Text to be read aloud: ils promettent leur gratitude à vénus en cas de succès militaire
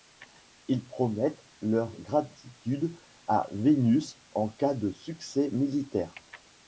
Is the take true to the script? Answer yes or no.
yes